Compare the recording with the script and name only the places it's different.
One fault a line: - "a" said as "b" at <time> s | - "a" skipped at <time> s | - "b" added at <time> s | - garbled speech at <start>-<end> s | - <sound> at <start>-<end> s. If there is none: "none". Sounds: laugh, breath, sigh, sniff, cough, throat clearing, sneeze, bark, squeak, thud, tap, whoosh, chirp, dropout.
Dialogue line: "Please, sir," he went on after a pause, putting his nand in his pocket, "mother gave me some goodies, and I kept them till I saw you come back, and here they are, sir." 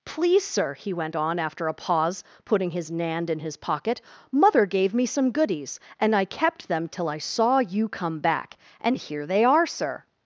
none